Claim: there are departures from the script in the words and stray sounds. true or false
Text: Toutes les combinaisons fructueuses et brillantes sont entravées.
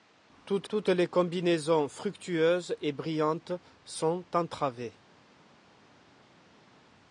true